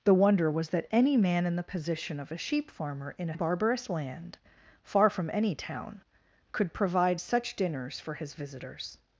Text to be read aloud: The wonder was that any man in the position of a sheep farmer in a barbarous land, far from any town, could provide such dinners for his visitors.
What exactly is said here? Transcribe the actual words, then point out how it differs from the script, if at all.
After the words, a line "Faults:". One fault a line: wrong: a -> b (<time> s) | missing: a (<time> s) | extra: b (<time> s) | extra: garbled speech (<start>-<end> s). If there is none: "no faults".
The wonder was that any man in the position of a sheep farmer in a barbarous land, far from any town, could provide such dinners for his visitors.
Faults:
no faults